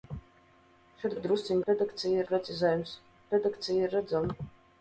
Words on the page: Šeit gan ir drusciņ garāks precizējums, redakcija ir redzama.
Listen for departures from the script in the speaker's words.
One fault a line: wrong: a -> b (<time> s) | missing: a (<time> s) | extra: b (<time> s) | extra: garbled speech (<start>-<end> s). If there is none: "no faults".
missing: gan (1.1 s)
wrong: garāks -> redakcija (1.7 s)